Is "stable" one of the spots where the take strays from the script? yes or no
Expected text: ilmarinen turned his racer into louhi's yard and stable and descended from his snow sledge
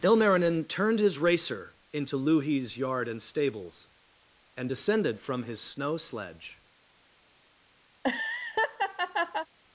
yes